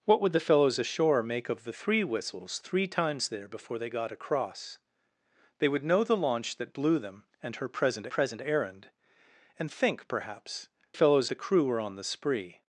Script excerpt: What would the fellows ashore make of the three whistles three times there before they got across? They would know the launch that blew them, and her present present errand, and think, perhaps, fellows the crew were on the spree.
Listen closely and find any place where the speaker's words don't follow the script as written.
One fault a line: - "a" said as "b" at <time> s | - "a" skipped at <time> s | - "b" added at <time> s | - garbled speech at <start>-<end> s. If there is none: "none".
none